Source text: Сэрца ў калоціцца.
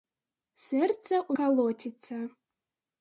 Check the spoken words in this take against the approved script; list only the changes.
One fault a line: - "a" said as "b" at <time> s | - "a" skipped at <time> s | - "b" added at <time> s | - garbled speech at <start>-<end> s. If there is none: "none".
none